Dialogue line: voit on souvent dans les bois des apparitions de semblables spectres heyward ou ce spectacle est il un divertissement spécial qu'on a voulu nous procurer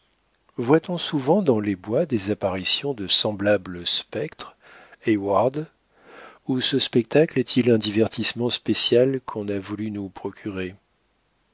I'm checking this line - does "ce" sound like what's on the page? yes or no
yes